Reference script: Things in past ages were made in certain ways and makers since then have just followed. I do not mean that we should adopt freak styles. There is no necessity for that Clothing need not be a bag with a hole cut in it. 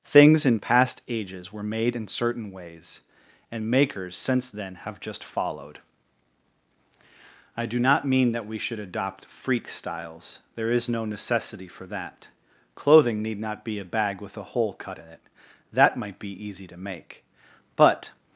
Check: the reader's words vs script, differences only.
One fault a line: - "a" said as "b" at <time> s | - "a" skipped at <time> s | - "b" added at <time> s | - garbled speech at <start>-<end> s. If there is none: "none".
- "That might be easy to make but" added at 15.7 s